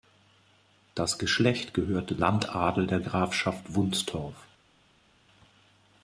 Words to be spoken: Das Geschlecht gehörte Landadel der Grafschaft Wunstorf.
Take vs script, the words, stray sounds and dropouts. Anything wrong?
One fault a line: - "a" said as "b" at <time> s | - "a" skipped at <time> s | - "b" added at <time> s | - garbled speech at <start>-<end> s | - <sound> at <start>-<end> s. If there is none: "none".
none